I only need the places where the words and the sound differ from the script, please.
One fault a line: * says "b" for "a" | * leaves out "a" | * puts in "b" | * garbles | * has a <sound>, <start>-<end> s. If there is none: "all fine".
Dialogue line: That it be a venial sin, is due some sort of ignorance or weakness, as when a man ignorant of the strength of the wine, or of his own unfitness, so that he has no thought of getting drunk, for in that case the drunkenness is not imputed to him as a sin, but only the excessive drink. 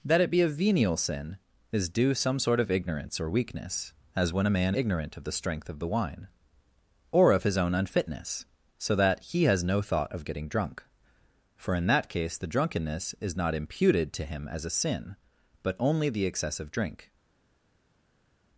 all fine